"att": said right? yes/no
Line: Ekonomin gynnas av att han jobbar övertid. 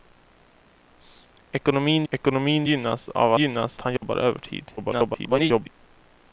no